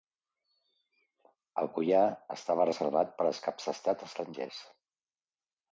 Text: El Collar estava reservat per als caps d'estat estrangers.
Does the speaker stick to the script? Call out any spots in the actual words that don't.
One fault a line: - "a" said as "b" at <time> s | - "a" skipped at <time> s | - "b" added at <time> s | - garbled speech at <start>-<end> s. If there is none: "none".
none